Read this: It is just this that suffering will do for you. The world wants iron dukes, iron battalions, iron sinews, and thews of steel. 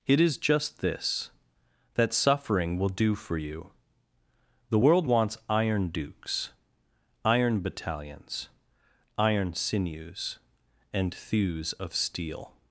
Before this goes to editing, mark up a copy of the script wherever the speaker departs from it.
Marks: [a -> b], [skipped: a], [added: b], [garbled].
It is just this that suffering will do for you. The world wants iron dukes, iron battalions, iron sinews, and thews of steel.